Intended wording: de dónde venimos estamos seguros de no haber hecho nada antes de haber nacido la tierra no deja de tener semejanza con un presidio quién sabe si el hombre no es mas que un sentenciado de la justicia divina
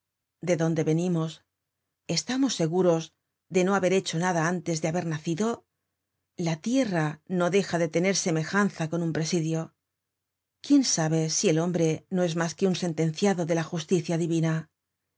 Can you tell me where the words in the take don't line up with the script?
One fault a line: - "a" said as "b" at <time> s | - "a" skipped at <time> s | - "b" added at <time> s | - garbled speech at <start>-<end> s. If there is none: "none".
none